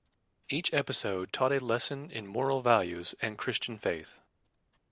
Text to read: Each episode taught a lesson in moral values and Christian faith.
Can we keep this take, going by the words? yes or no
yes